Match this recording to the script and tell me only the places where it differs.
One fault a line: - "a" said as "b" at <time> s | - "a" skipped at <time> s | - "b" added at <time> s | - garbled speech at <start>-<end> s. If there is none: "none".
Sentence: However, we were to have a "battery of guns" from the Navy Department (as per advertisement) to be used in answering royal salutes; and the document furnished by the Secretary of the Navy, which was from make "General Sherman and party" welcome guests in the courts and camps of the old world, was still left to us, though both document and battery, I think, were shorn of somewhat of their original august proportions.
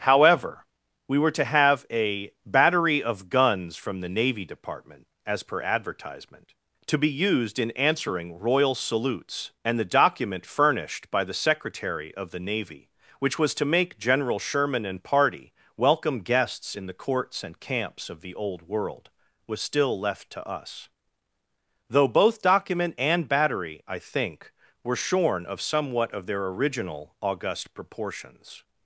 - "from" said as "to" at 13.5 s